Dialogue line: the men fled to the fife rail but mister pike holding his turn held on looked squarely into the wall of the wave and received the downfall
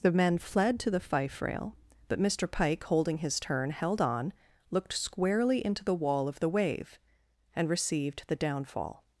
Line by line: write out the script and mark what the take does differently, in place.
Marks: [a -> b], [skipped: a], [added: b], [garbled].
the men fled to the fife rail but mister pike holding his turn held on looked squarely into the wall of the wave and received the downfall